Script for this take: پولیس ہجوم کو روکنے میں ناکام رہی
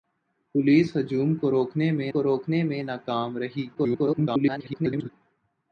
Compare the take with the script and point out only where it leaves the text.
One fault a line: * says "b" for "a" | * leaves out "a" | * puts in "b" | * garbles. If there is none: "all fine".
* puts in "کو روکنے میں"
* garbles